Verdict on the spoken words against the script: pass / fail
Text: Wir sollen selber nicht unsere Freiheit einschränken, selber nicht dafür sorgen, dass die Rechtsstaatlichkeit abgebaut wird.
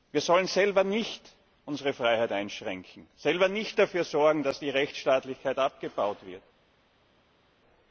pass